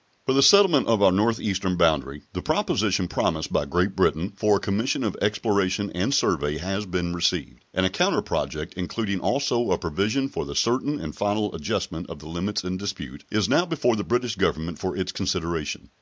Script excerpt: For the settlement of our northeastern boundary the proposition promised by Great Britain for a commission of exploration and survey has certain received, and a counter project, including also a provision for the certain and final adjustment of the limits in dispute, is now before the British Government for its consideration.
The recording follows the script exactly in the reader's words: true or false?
false